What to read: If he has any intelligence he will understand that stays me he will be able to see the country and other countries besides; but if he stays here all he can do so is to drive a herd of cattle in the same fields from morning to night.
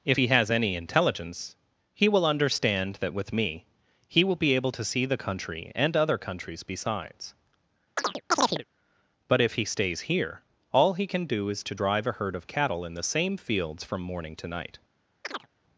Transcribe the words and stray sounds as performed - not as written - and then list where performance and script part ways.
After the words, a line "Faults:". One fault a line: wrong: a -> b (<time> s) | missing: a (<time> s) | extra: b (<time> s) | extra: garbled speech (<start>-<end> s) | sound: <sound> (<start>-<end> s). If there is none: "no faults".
If he has any intelligence he will understand that with me he will be able to see the country and other countries besides; but if he stays here all he can do is to drive a herd of cattle in the same fields from morning to night.
Faults:
wrong: stays -> with (3.2 s)
sound: chirp (8.0-8.6 s)
missing: so (11.5 s)
sound: chirp (15.2-15.5 s)